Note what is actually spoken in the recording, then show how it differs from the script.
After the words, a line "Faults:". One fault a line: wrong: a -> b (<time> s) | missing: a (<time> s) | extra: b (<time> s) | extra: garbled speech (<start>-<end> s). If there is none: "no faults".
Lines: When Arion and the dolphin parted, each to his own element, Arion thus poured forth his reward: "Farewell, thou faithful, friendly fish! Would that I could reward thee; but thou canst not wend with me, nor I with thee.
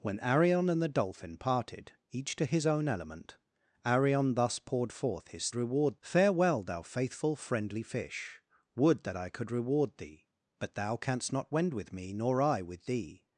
When Arion and the dolphin parted, each to his own element, Arion thus poured forth his reward: "Farewell, thou faithful, friendly fish! Would that I could reward thee; but thou canst not wend with me, nor I with thee.
Faults:
no faults